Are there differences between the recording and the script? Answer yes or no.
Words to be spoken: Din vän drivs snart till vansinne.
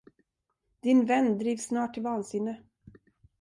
no